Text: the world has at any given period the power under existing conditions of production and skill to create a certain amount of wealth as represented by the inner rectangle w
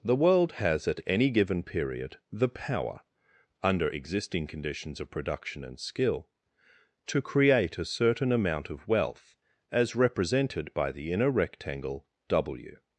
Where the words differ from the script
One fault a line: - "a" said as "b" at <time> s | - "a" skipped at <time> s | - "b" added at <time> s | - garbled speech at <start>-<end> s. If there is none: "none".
none